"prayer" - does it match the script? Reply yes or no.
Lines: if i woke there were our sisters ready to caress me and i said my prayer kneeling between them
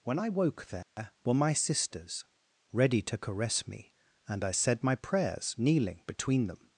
no